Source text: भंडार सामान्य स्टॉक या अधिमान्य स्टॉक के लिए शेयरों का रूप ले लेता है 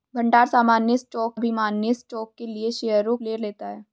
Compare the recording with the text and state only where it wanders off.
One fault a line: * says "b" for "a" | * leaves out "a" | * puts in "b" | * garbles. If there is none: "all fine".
* leaves out "या"
* leaves out "का रूप"